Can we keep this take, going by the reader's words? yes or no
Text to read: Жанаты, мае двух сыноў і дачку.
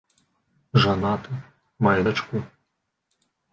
no